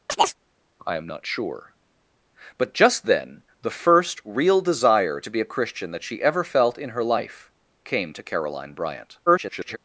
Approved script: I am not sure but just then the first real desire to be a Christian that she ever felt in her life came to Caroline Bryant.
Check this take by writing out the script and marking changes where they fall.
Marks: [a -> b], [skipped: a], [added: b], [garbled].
I am not sure but just then the first real desire to be a Christian that she ever felt in her life came to Caroline Bryant. [garbled]